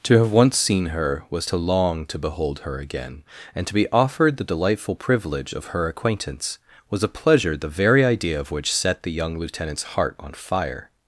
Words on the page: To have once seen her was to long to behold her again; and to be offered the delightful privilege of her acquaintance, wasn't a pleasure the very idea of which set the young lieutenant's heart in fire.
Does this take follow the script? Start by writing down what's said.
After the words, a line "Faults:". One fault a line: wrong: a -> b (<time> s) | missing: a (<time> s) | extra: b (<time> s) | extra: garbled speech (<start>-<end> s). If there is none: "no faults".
To have once seen her was to long to behold her again; and to be offered the delightful privilege of her acquaintance, was a pleasure the very idea of which set the young lieutenant's heart on fire.
Faults:
wrong: wasn't -> was (6.9 s)
wrong: in -> on (10.2 s)